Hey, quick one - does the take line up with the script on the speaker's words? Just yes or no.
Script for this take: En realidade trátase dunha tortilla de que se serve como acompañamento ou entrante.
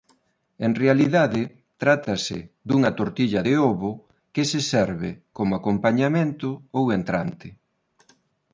no